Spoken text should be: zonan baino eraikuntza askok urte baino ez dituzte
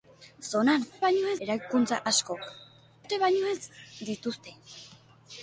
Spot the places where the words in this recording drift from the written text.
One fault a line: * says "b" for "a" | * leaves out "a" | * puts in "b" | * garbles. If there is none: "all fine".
all fine